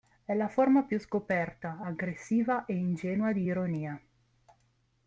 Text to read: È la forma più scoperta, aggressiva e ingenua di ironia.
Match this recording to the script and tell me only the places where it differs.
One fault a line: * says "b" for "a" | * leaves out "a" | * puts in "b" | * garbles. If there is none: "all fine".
all fine